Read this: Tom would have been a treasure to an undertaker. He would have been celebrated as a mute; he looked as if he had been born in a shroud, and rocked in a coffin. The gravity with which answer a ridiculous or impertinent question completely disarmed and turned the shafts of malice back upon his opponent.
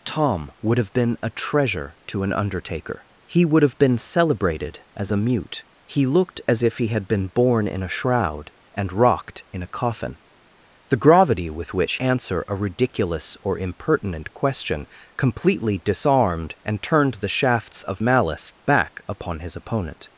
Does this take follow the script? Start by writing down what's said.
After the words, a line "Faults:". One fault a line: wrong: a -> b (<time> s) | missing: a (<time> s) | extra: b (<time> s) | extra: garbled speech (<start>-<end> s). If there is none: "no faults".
Tom would have been a treasure to an undertaker. He would have been celebrated as a mute; he looked as if he had been born in a shroud, and rocked in a coffin. The gravity with which answer a ridiculous or impertinent question completely disarmed and turned the shafts of malice back upon his opponent.
Faults:
no faults